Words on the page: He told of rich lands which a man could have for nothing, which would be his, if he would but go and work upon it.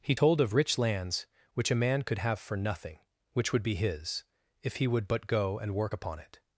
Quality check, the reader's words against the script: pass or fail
pass